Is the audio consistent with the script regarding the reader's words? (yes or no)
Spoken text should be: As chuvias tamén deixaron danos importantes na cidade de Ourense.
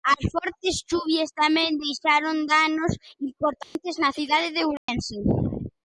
no